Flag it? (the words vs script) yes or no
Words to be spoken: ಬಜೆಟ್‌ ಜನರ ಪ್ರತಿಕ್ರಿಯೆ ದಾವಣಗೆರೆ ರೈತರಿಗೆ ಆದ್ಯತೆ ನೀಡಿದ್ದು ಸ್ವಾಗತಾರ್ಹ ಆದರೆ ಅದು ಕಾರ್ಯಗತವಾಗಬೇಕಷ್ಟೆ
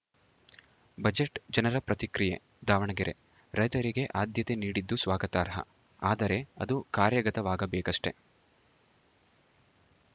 no